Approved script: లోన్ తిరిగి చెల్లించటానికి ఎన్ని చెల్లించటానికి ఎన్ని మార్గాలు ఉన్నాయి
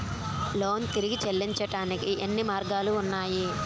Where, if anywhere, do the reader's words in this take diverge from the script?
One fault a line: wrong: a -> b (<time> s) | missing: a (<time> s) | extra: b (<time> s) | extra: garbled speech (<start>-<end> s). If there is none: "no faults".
missing: చెల్లించటానికి ఎన్ని (2.4 s)